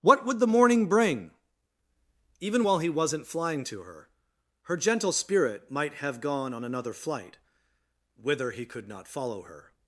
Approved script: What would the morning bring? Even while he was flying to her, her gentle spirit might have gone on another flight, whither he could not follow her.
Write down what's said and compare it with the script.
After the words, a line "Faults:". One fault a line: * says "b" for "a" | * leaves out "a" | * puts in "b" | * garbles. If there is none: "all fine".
What would the morning bring? Even while he wasn't flying to her, her gentle spirit might have gone on another flight, whither he could not follow her.
Faults:
* says "wasn't" for "was"